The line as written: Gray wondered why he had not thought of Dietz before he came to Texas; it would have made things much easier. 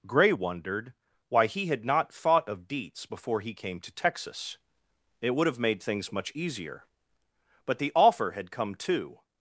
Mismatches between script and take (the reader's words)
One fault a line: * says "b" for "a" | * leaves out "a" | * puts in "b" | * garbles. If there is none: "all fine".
* puts in "But the offer had come too"